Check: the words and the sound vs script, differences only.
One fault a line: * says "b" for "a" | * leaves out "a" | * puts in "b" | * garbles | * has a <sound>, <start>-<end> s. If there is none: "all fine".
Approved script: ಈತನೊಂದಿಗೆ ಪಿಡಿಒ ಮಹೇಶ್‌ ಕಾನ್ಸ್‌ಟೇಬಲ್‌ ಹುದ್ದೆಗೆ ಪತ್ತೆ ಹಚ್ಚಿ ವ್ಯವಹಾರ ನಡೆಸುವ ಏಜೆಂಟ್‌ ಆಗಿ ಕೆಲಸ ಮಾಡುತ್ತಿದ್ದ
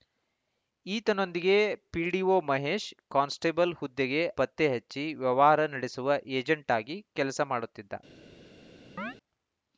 * has a chirp, 9.0-9.2 s